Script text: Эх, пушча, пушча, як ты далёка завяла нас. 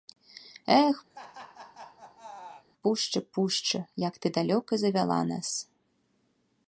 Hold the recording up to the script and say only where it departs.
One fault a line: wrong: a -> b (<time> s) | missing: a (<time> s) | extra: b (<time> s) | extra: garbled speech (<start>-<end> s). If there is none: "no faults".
no faults